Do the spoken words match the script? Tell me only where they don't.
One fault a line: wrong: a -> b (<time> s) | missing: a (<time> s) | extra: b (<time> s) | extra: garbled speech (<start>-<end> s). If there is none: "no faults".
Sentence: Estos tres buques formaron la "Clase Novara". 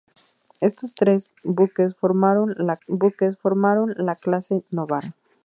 extra: buques formaron la (2.9 s)